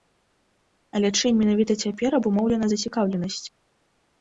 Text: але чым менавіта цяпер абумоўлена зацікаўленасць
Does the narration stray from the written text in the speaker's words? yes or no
no